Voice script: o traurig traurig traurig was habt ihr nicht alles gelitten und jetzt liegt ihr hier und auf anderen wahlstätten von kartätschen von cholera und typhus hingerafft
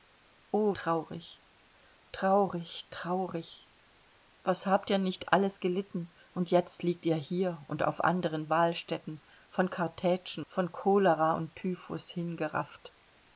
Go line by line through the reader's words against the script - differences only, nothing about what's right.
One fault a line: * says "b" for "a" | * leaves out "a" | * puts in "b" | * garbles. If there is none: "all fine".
all fine